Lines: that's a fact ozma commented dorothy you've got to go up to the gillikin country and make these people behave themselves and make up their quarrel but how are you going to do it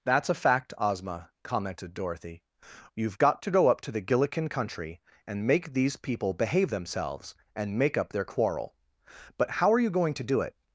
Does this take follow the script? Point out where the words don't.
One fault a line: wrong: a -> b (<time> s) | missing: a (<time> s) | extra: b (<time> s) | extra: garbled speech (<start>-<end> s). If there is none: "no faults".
no faults